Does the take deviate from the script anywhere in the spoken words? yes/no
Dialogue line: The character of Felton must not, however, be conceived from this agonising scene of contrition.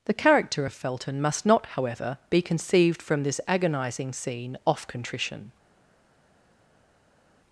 yes